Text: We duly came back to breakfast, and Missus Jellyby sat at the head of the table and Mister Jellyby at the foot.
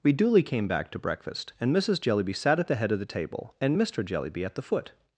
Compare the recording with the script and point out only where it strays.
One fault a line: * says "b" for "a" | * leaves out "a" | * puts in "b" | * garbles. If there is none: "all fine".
all fine